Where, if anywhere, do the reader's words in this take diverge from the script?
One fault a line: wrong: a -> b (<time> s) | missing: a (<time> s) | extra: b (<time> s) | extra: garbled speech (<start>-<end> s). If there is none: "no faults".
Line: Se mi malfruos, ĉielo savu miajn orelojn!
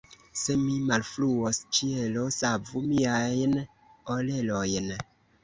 no faults